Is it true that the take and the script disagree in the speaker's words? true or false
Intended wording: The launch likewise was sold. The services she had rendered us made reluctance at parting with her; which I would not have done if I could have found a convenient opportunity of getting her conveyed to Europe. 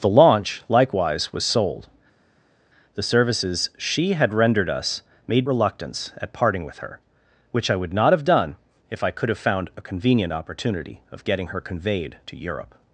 false